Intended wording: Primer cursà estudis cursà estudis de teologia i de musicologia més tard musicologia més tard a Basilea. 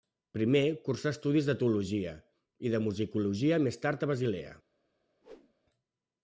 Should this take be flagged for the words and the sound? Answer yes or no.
yes